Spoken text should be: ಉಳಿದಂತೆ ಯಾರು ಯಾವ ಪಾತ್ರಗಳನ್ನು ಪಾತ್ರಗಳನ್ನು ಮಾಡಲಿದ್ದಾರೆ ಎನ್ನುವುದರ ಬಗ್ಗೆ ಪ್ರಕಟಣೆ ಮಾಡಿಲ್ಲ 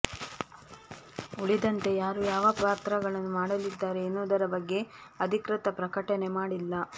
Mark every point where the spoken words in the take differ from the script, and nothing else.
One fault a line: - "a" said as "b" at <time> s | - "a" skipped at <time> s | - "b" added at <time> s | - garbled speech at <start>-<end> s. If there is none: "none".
- "ಪಾತ್ರಗಳನ್ನು" skipped at 3.3 s
- "ಅಧಿಕೃತ" added at 5.2 s